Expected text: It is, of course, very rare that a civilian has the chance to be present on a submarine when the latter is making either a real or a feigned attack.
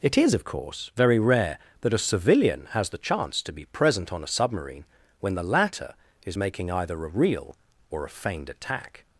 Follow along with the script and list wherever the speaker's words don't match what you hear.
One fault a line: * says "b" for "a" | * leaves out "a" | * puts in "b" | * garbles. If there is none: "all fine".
all fine